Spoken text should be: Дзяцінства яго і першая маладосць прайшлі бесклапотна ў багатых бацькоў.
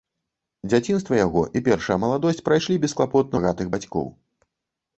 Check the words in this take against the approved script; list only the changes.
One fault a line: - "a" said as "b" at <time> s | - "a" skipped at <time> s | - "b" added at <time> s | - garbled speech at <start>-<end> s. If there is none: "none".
- "ў" skipped at 3.4 s